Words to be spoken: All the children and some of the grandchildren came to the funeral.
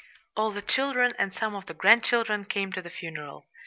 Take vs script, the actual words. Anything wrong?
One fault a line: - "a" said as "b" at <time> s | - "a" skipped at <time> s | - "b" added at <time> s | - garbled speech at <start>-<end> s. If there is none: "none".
none